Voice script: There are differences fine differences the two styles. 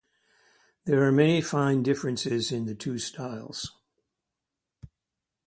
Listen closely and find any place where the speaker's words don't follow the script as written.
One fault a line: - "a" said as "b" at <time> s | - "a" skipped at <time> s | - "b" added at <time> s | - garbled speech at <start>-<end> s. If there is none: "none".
- "differences" said as "many" at 1.1 s
- "in" added at 2.5 s